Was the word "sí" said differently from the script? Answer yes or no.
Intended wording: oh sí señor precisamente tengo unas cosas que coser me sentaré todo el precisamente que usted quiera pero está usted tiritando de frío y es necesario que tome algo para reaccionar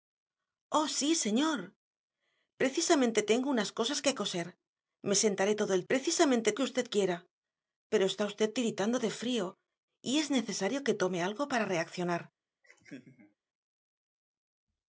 no